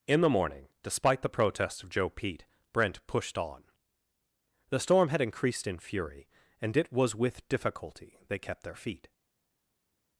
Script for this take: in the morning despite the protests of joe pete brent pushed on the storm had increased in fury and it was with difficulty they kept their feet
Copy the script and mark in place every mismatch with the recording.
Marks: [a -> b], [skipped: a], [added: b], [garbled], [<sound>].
in the morning despite the protests of joe pete brent pushed on the storm had increased in fury and it was with difficulty they kept their feet